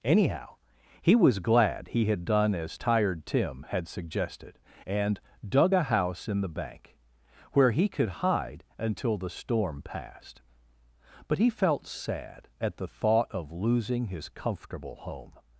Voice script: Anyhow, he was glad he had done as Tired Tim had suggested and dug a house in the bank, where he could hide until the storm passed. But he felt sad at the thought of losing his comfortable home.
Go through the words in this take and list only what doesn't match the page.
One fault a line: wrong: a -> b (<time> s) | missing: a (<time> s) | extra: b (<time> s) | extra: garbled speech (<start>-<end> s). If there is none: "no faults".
no faults